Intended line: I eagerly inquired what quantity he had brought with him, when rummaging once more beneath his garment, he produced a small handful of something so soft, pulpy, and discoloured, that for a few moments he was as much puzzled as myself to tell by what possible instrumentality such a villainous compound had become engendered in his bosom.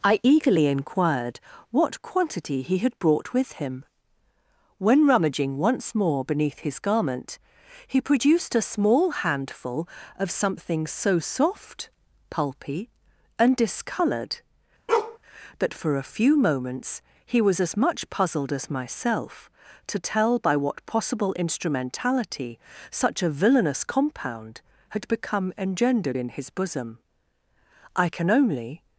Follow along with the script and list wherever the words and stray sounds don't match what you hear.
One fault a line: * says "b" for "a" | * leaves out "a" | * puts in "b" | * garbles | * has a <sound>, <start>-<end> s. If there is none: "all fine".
* has a bark, 14.9-15.2 s
* puts in "I can only"